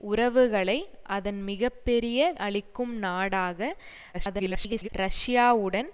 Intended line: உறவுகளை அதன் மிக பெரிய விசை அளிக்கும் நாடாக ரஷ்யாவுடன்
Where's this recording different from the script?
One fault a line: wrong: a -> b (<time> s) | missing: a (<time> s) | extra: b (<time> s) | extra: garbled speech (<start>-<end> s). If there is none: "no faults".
missing: விசை (2.2 s)
extra: garbled speech (4.1-4.9 s)